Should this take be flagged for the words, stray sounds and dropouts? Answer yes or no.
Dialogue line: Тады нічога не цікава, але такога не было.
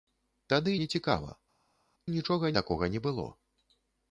yes